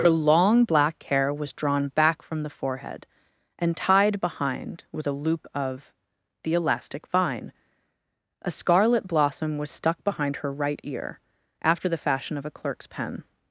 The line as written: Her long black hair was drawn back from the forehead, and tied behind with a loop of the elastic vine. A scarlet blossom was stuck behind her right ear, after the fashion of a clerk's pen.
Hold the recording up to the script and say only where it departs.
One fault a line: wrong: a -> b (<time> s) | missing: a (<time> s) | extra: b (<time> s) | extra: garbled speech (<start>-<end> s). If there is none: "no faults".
no faults